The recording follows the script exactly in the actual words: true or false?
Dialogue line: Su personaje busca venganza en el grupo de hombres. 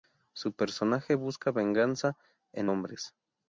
false